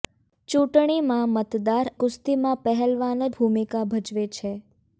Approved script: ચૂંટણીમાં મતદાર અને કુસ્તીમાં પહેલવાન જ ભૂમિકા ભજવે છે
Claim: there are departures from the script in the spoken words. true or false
true